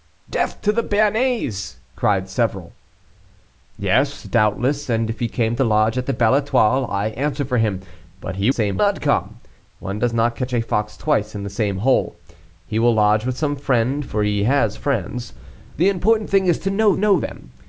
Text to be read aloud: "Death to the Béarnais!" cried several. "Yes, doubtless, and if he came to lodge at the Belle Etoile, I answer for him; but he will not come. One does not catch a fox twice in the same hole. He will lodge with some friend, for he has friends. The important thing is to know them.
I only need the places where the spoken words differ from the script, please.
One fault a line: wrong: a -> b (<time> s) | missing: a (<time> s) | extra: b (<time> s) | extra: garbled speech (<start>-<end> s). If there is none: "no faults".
wrong: will -> same (8.5 s)
extra: know (16.9 s)